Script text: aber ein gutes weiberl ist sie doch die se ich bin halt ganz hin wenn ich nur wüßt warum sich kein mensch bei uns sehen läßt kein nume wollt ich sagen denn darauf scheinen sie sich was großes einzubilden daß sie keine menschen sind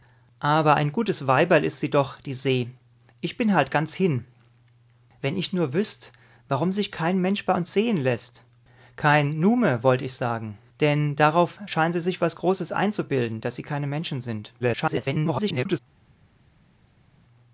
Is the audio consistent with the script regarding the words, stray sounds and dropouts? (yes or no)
no